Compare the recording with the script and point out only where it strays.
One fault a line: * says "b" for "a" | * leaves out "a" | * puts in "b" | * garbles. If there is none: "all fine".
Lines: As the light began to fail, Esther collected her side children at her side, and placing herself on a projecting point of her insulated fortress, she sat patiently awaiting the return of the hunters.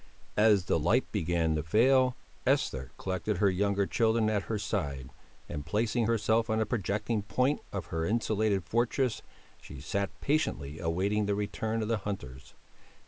* says "younger" for "side"